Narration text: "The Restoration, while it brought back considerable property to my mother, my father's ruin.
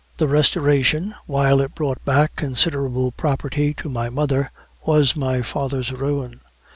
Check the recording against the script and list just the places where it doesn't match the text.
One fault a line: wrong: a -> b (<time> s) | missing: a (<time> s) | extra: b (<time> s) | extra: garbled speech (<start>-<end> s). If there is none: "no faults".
extra: was (4.8 s)